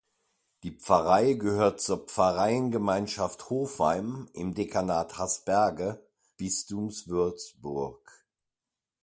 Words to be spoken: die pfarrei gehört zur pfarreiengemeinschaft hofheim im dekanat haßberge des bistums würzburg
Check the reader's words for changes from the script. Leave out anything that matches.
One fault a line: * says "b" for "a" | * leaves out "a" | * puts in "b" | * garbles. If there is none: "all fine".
* leaves out "des"